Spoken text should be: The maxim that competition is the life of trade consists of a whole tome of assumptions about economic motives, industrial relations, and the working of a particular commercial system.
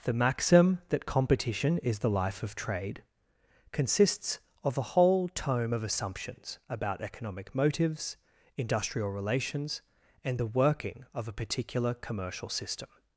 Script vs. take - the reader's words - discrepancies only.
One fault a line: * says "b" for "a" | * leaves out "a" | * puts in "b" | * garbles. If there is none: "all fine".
all fine